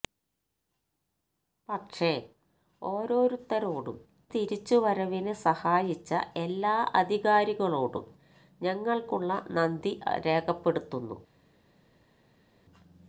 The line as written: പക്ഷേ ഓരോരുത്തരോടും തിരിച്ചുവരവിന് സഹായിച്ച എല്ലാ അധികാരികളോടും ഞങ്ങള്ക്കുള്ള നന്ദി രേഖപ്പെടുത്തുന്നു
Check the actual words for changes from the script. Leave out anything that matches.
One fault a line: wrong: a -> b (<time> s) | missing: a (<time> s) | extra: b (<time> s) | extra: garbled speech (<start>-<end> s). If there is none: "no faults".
no faults